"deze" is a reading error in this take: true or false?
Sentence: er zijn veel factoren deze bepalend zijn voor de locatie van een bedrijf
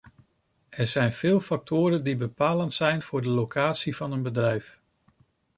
true